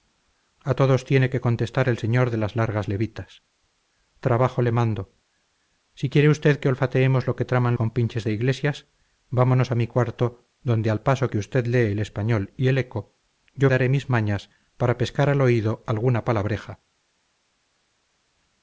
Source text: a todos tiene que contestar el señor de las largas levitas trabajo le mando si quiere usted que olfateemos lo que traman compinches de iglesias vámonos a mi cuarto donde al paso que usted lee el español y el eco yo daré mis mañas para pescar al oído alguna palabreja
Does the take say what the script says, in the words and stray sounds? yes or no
yes